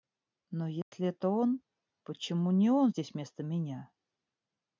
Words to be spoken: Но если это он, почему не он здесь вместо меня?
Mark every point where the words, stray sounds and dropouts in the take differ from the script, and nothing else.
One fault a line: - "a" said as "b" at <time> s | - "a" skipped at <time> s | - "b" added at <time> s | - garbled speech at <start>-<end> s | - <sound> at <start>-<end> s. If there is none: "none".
- dropout at 0.8-0.9 s